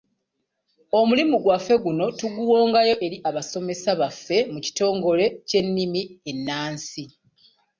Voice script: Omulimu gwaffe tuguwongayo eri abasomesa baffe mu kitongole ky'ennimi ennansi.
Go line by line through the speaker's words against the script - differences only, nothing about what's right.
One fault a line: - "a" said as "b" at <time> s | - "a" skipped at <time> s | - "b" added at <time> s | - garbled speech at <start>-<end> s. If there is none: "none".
- "guno" added at 1.8 s